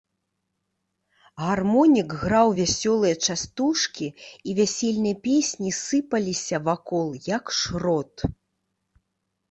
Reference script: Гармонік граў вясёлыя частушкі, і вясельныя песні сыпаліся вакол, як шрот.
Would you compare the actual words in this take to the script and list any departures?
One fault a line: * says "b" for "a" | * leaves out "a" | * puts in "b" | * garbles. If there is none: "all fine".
all fine